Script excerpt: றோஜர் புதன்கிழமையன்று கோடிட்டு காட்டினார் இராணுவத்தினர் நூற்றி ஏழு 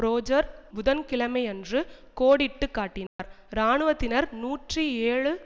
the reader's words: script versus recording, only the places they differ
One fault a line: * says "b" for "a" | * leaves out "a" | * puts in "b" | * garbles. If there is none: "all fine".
all fine